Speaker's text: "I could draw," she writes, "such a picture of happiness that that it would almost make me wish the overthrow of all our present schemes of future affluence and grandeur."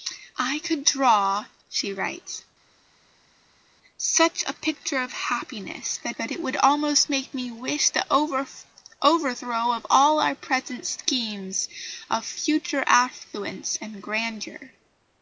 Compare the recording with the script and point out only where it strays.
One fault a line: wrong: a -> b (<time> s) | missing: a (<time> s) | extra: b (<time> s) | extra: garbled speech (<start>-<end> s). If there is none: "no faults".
no faults